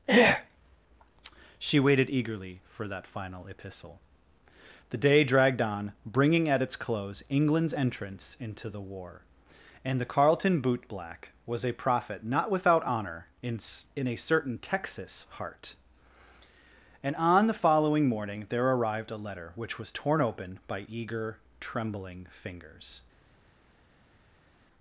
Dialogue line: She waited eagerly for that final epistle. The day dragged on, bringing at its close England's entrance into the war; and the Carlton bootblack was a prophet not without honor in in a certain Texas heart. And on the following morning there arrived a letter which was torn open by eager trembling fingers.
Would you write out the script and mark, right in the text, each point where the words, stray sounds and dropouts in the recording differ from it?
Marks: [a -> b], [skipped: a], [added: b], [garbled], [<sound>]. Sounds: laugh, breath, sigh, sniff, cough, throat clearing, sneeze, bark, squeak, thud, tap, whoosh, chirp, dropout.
She waited eagerly for that final epistle. The day dragged on, bringing at its close England's entrance into the war; and the Carlton bootblack was a prophet not without honor in in a certain Texas heart. And on the following morning there arrived a letter which was torn open by eager trembling fingers.